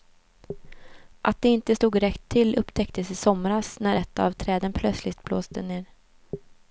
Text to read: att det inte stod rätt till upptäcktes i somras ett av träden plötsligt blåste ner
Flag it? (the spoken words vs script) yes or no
yes